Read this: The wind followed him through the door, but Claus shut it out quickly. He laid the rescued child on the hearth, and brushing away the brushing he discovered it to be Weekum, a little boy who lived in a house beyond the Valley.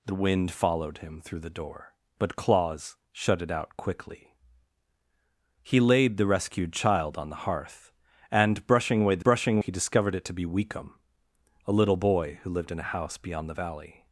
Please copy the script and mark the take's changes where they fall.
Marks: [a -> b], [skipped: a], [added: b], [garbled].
The wind followed him through the door, but Claus shut it out quickly. He laid the rescued child on the hearth, and brushing away the brushing he discovered it to be Weekum, a little boy who lived in a house beyond the Valley.